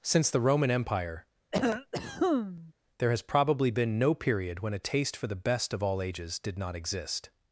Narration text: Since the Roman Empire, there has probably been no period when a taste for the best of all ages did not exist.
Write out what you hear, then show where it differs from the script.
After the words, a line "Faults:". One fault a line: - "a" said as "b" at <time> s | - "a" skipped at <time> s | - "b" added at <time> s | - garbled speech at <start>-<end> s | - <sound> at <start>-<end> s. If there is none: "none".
Since the Roman Empire, there has probably been no period when a taste for the best of all ages did not exist.
Faults:
- cough at 1.5-2.7 s